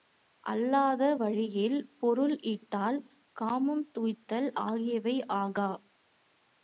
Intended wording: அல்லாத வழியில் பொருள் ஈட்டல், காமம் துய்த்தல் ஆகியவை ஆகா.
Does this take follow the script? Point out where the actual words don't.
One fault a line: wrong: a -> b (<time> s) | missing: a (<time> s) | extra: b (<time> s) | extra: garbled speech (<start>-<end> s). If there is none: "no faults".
no faults